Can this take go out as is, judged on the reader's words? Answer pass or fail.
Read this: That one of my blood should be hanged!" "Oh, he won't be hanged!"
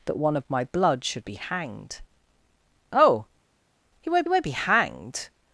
fail